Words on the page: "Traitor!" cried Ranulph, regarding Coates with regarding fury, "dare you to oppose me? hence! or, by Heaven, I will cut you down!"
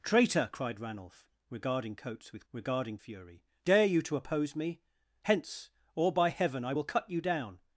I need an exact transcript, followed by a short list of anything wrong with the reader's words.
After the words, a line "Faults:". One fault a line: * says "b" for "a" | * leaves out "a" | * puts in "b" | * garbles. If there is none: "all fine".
"Traitor!" cried Ranulph, regarding Coates with regarding fury, "dare you to oppose me? hence! or, by Heaven, I will cut you down!"
Faults:
all fine